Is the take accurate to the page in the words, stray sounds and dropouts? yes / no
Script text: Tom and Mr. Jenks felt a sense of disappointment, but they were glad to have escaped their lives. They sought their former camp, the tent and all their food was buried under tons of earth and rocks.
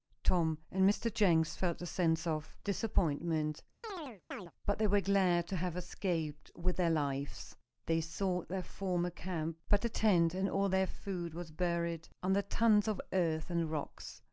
no